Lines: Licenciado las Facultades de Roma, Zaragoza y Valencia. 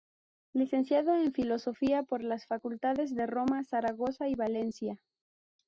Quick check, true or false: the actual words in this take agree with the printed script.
false